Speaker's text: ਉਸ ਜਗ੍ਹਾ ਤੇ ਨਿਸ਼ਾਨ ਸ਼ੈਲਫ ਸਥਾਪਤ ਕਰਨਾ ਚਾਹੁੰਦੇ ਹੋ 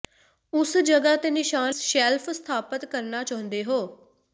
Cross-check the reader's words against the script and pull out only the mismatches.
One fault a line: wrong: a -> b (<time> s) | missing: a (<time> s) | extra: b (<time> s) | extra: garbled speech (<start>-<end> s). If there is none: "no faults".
no faults